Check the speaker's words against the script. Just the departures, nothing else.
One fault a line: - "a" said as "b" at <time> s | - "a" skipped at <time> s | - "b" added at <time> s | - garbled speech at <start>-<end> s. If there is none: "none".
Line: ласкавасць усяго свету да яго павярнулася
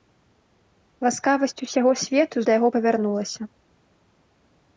none